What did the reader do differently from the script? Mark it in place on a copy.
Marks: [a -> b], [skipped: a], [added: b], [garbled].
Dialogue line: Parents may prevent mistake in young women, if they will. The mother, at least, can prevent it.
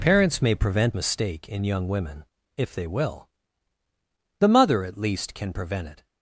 Parents may prevent mistake in young women, if they will. The mother, at least, can prevent it.